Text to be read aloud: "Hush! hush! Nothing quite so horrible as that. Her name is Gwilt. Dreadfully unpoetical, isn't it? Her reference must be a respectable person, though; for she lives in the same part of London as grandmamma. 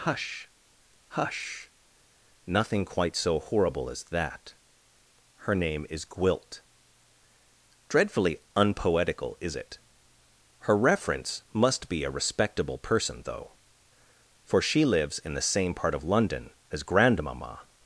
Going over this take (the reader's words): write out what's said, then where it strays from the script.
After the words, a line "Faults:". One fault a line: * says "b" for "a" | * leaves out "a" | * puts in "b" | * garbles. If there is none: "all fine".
"Hush! hush! Nothing quite so horrible as that. Her name is Gwilt. Dreadfully unpoetical, is it? Her reference must be a respectable person, though; for she lives in the same part of London as grandmamma.
Faults:
* says "is" for "isn't"